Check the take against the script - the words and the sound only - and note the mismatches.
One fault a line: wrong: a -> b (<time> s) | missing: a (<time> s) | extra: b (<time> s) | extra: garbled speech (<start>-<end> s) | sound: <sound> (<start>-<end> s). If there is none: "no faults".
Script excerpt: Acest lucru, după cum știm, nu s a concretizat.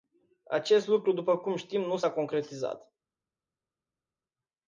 no faults